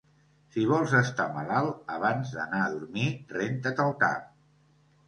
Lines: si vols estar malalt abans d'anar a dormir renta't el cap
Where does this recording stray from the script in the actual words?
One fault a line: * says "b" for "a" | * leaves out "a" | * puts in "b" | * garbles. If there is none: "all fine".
all fine